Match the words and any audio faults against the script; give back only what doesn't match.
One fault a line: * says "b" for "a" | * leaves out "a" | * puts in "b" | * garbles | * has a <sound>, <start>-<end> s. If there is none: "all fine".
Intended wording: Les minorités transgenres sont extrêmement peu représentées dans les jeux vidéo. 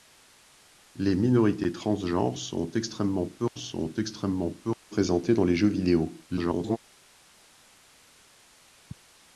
* puts in "sont extrêmement peu"
* garbles